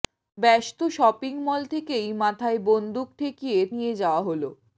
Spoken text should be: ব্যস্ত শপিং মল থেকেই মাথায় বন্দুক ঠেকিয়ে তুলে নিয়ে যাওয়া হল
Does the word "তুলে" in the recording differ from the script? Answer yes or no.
yes